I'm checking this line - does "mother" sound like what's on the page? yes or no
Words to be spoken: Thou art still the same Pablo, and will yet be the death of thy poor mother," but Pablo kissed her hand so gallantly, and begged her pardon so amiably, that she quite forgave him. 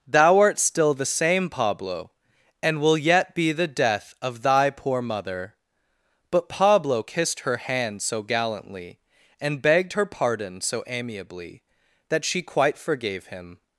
yes